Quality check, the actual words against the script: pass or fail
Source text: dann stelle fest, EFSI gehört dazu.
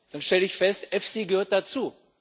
fail